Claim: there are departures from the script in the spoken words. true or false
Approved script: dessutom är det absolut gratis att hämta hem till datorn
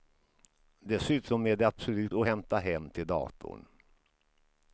true